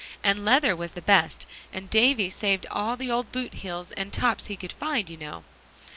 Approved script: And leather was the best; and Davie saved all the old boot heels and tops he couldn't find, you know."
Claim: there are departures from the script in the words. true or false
true